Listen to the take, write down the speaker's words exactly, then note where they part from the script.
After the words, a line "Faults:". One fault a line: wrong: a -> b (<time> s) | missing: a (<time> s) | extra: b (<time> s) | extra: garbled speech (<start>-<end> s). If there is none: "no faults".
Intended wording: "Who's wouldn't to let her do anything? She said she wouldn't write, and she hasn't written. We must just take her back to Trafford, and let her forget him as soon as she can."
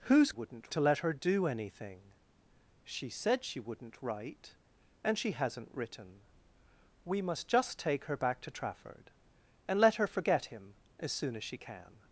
"Who's wouldn't to let her do anything? She said she wouldn't write, and she hasn't written. We must just take her back to Trafford, and let her forget him as soon as she can."
Faults:
no faults